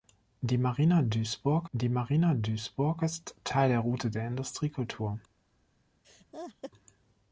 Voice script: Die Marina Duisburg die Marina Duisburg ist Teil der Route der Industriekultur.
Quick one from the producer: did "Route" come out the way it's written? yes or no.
yes